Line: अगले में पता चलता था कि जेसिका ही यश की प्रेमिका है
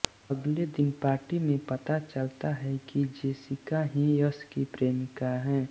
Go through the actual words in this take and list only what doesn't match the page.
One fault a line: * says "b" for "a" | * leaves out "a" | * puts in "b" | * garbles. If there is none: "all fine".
* puts in "दिन पार्टी"
* says "है" for "था"